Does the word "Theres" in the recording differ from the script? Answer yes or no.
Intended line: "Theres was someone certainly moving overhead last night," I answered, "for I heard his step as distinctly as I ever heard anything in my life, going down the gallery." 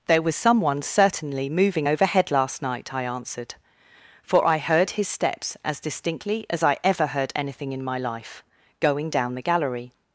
yes